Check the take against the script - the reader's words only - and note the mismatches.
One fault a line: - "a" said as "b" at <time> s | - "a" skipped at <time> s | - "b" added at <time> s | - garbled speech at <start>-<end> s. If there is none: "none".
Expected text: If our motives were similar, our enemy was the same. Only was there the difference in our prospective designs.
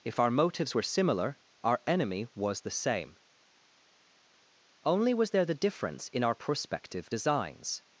none